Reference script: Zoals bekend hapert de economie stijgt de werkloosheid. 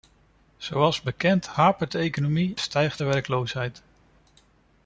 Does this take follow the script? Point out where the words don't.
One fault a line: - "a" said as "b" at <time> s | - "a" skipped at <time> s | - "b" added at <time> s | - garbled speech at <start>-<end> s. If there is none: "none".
none